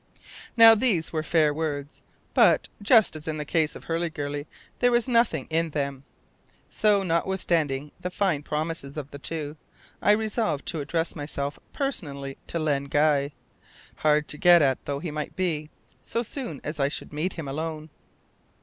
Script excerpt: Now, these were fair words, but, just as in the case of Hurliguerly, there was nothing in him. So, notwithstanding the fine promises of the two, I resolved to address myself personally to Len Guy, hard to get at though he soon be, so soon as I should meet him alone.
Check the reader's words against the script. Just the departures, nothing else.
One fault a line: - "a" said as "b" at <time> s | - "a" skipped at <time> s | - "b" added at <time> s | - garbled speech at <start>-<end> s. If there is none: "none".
- "him" said as "them" at 5.7 s
- "soon" said as "might" at 15.1 s